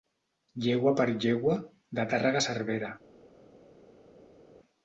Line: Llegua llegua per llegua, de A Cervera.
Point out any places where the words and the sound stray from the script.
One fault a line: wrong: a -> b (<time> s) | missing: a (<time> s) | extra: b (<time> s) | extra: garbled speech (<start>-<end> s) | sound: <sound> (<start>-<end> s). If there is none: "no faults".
missing: llegua (0.9 s)
extra: Tàrrega (2.1 s)